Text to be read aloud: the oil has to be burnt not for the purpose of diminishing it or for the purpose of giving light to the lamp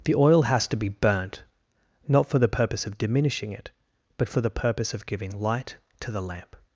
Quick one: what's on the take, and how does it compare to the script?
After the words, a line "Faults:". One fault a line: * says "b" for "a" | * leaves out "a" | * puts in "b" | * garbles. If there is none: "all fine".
the oil has to be burnt not for the purpose of diminishing it but for the purpose of giving light to the lamp
Faults:
* says "but" for "or"